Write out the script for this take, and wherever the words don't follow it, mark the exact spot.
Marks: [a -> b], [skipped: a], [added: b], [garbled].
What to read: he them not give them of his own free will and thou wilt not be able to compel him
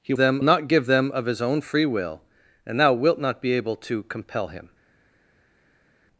he them not give them of his own free will and thou wilt not be able to compel him